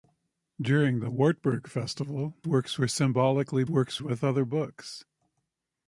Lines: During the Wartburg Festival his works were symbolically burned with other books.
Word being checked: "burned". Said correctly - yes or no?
no